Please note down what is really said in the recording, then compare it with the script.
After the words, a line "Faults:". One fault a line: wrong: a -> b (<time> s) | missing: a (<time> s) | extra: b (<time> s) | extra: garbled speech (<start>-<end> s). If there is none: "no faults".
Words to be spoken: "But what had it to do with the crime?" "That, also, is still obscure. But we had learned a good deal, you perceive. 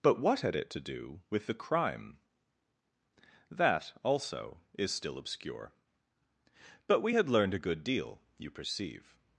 "But what had it to do with the crime?" "That, also, is still obscure. But we had learned a good deal, you perceive.
Faults:
no faults